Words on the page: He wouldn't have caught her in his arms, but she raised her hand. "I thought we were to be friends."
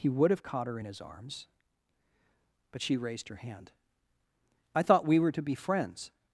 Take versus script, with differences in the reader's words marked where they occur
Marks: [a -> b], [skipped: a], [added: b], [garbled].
He [wouldn't -> would] have caught her in his arms, but she raised her hand. "I thought we were to be friends."